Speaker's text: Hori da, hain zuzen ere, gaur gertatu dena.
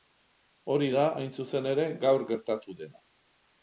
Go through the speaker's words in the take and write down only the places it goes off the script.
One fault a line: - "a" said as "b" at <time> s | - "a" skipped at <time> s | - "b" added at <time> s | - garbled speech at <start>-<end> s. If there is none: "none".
none